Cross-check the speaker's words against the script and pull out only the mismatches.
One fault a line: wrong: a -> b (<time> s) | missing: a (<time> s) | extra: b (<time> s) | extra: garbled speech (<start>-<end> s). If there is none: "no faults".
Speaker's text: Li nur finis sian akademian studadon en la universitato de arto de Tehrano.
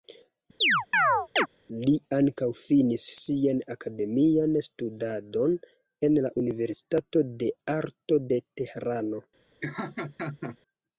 wrong: nur -> ankaŭ (2.2 s)